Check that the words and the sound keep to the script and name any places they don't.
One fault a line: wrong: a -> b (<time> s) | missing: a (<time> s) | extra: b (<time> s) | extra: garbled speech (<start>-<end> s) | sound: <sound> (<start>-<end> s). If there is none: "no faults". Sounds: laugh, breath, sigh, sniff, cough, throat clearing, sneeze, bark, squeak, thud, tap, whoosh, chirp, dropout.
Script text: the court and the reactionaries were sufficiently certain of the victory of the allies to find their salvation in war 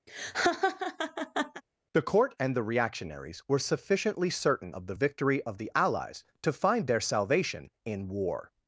sound: laugh (0.1-1.6 s)